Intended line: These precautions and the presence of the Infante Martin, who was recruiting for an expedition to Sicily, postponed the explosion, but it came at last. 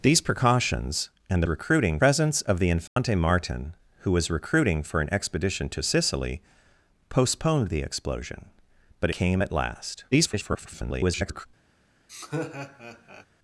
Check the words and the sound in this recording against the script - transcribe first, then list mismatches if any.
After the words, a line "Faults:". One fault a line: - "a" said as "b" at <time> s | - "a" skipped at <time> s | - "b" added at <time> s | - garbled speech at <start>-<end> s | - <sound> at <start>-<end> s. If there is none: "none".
These precautions and recruiting presence of the Infante Martin, who was recruiting for an expedition to Sicily, postponed the explosion, but came at last. [garbled]
Faults:
- "the" said as "recruiting" at 1.5 s
- dropout at 2.9-3.0 s
- "it" skipped at 9.1 s
- garbled speech at 10.1-11.5 s
- laugh at 12.1-13.3 s